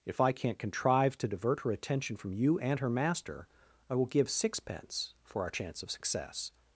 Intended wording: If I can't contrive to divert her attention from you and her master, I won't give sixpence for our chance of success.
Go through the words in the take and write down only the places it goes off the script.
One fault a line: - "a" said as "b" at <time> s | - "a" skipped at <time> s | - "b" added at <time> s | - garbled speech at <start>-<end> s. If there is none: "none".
- "won't" said as "will" at 4.0 s